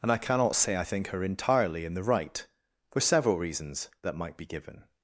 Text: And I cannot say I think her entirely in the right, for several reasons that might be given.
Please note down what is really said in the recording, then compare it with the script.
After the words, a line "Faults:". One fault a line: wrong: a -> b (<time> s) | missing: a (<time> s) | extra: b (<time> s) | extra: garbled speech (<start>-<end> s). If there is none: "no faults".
And I cannot say I think her entirely in the right, for several reasons that might be given.
Faults:
no faults